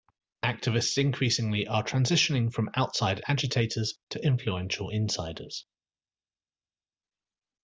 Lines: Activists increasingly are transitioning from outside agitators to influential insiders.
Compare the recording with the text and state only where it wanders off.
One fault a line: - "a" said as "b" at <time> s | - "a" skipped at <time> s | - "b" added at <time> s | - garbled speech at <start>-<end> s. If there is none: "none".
none